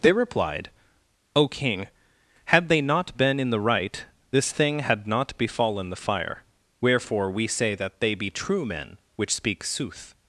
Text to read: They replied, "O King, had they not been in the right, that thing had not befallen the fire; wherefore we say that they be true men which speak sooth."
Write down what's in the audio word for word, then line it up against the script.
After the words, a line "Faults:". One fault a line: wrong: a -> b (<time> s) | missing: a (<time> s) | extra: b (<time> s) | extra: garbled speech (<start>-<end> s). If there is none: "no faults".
They replied, "O King, had they not been in the right, this thing had not befallen the fire; wherefore we say that they be true men which speak sooth."
Faults:
wrong: that -> this (4.3 s)